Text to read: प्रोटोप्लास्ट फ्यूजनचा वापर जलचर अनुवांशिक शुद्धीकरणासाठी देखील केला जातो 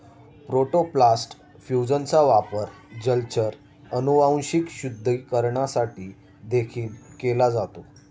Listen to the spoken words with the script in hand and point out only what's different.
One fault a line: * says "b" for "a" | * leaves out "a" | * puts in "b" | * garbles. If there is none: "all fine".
all fine